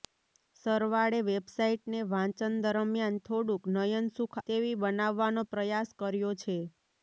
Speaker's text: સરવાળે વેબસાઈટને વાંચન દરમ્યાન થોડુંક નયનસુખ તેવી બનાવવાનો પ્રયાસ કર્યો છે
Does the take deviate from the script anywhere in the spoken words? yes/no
no